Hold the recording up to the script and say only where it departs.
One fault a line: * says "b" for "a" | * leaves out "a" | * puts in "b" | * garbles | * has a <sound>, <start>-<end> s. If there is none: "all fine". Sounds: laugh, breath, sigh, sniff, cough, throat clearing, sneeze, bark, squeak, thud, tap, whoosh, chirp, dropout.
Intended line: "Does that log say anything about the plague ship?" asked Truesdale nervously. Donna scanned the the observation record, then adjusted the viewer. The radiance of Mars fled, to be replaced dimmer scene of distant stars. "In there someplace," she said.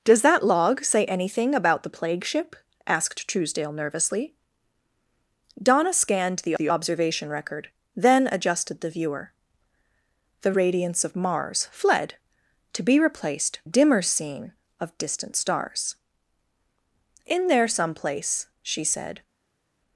all fine